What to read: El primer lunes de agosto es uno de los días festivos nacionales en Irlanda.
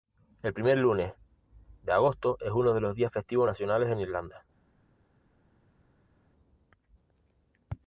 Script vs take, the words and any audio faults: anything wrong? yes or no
no